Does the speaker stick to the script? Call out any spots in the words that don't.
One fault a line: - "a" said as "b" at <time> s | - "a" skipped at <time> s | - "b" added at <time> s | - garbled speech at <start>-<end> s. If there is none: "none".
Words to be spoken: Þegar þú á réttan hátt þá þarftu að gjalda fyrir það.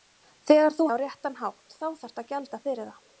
none